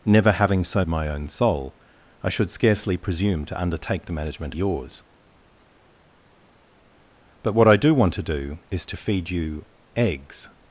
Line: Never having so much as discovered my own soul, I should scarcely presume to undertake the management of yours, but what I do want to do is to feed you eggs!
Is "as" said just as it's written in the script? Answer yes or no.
no